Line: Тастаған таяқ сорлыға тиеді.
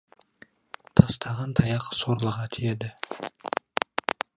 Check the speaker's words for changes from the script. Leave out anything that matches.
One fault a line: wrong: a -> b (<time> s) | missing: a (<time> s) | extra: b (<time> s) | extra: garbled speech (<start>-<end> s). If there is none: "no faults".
no faults